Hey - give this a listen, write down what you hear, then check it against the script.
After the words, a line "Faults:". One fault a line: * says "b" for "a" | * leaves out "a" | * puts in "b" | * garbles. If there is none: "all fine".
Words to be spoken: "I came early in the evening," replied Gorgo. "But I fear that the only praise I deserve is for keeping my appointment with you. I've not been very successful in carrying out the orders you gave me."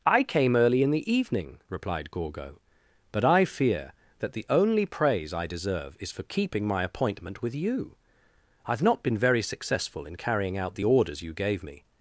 "I came early in the evening," replied Gorgo. "But I fear that the only praise I deserve is for keeping my appointment with you. I've not been very successful in carrying out the orders you gave me."
Faults:
all fine